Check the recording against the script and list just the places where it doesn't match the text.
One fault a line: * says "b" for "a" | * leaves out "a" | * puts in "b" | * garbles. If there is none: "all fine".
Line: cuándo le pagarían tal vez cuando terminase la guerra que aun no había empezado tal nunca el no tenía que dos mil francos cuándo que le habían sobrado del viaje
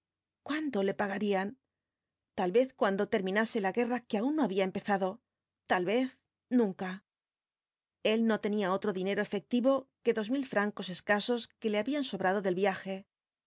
* puts in "vez"
* puts in "otro dinero efectivo"
* says "escasos" for "cuándo"